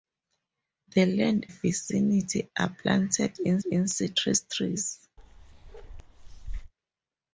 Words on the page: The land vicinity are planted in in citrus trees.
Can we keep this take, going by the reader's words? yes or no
yes